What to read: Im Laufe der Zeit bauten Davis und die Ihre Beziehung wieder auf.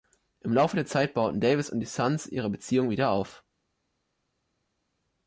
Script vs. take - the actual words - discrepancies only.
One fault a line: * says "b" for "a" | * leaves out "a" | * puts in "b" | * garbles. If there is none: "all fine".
* puts in "Suns"